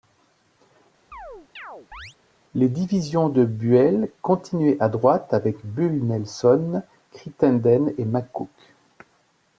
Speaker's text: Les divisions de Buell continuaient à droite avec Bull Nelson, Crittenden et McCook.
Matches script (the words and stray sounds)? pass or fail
fail